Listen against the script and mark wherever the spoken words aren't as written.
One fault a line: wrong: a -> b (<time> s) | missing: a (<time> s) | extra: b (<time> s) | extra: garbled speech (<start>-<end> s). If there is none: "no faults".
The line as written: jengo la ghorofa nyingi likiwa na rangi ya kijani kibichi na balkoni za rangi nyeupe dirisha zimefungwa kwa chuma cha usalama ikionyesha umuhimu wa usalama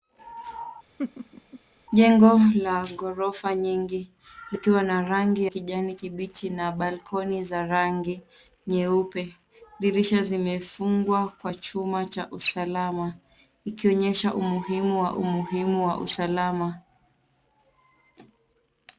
missing: ya (5.5 s)
extra: umuhimu wa (15.2 s)